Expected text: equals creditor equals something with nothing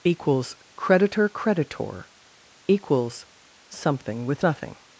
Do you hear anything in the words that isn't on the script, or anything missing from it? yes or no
yes